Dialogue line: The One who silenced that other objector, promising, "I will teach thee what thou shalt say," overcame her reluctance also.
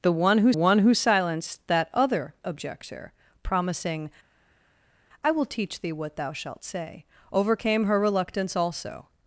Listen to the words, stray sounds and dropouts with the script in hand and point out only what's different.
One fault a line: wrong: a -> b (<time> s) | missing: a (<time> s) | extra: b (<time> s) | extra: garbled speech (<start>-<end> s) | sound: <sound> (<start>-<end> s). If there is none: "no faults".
extra: One who (0.5 s)